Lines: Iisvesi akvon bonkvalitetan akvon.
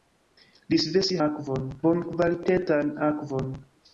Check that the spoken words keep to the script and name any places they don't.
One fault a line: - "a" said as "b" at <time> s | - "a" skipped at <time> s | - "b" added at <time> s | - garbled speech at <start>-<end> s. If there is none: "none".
none